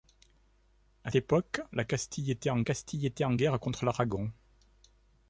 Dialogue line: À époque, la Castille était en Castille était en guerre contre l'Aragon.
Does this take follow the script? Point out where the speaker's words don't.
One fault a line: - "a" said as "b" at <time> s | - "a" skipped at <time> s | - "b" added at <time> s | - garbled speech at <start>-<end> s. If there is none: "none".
none